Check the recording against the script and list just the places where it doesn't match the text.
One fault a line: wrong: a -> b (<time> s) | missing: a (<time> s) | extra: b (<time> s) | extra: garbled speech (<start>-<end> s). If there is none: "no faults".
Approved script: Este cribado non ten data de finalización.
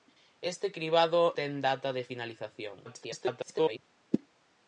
missing: non (1.2 s)
extra: garbled speech (2.8-3.8 s)